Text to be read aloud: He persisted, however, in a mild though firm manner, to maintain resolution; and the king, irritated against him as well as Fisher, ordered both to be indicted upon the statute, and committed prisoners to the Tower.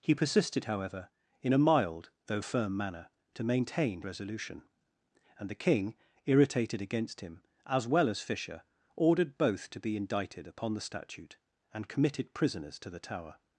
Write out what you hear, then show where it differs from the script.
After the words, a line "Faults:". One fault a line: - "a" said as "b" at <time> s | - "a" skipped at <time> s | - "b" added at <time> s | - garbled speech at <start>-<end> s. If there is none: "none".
He persisted, however, in a mild though firm manner, to maintain resolution; and the king, irritated against him as well as Fisher, ordered both to be indicted upon the statute, and committed prisoners to the Tower.
Faults:
none